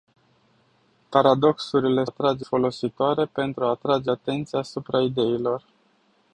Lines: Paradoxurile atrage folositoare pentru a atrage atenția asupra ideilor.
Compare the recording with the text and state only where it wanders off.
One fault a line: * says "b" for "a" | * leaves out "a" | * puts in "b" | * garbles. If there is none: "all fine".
all fine